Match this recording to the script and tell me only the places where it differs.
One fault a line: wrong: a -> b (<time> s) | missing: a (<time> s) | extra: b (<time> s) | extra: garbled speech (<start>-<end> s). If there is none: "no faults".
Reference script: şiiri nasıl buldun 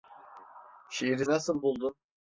no faults